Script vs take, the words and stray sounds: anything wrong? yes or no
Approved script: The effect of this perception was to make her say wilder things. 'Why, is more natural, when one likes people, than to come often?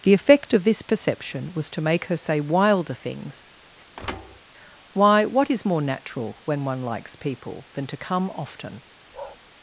yes